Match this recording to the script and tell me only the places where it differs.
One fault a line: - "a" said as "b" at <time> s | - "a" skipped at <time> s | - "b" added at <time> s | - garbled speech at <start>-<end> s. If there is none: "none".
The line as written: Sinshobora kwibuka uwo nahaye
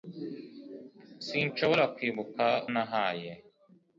- "uwo" skipped at 2.4 s